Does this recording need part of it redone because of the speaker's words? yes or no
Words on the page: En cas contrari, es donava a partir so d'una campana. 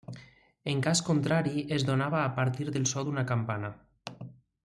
yes